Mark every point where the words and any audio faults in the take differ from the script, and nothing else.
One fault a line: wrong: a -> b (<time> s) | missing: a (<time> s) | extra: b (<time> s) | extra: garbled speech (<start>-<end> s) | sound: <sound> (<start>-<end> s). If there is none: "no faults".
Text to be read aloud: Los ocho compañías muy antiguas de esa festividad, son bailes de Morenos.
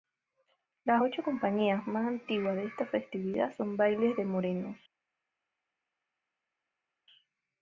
wrong: Los -> Las (0.8 s)
wrong: muy -> más (1.9 s)
wrong: esa -> esta (2.7 s)